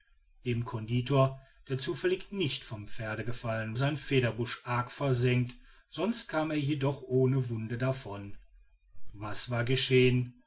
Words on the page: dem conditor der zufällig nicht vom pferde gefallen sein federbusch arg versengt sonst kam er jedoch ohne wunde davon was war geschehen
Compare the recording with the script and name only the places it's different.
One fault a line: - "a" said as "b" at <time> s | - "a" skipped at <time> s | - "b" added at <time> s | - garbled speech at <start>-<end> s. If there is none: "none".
none